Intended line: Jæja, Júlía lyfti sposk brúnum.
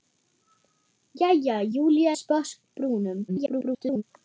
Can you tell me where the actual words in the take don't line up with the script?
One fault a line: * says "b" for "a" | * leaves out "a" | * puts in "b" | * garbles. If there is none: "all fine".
* leaves out "lyfti"
* garbles